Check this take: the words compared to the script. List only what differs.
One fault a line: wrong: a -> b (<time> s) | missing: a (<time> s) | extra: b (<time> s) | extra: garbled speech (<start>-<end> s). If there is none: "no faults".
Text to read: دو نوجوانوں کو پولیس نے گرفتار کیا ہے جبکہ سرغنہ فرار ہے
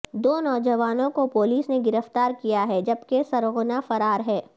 no faults